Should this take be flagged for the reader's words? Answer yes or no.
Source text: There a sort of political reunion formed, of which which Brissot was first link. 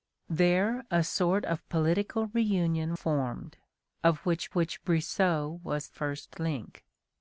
no